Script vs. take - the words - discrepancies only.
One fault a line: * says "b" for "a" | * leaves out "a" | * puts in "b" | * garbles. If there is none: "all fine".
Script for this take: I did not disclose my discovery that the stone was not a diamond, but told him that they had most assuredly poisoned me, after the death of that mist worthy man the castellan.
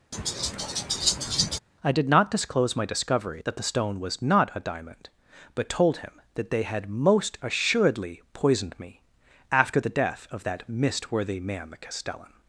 all fine